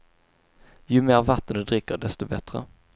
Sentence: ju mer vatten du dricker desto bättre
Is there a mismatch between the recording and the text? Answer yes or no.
no